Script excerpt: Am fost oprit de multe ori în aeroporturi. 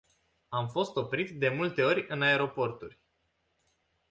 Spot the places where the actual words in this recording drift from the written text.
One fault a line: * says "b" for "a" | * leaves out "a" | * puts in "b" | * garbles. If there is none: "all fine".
all fine